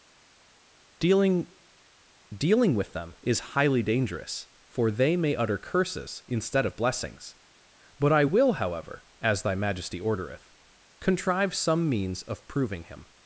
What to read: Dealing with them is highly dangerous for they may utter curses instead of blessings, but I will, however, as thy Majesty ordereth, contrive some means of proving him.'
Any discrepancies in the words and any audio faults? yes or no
yes